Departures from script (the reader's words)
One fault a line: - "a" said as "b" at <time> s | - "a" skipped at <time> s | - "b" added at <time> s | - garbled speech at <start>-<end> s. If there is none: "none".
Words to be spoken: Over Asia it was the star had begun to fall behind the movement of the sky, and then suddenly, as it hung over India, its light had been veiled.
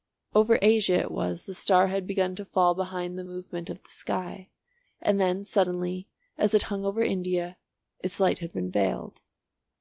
none